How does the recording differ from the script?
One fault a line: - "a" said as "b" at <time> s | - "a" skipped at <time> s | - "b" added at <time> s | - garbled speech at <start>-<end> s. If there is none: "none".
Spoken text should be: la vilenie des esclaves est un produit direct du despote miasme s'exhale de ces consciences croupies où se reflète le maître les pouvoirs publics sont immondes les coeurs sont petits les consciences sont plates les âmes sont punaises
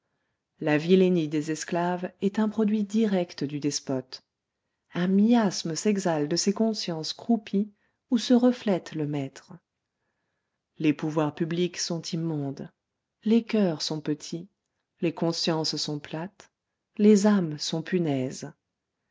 - "un" added at 4.9 s